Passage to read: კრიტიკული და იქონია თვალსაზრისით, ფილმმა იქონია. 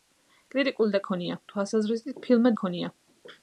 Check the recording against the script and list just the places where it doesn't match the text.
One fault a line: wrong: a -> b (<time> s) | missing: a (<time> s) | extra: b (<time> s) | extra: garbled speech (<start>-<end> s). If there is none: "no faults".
no faults